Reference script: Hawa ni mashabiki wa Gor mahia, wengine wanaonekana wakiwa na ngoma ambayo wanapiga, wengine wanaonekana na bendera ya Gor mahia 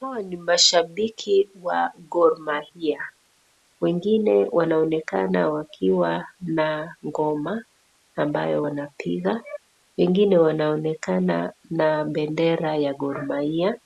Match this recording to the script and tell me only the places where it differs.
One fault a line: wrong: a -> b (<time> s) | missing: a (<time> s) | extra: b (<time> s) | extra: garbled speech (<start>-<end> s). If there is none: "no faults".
no faults